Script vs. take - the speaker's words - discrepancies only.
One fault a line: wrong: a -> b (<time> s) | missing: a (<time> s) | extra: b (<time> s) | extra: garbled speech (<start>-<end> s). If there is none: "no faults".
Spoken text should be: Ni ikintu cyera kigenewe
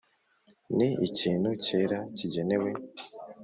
no faults